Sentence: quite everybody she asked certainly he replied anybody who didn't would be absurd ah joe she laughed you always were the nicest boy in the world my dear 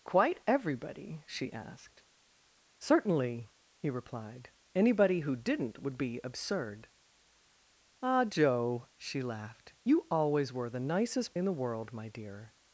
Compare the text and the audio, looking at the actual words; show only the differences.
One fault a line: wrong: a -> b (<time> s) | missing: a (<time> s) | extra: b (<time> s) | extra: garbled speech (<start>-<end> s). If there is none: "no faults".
missing: boy (11.4 s)